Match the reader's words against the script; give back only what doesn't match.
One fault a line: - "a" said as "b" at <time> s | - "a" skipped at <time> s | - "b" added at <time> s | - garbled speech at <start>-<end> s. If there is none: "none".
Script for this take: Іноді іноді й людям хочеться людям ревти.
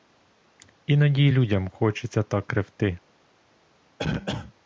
- "іноді" skipped at 1.2 s
- "людям" said as "так" at 2.2 s